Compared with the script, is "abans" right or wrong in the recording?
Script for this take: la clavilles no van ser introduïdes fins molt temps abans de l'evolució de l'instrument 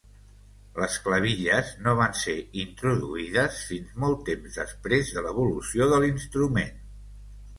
wrong